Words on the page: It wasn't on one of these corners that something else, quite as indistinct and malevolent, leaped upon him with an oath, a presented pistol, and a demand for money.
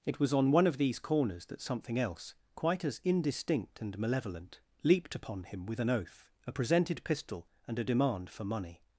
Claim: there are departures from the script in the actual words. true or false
true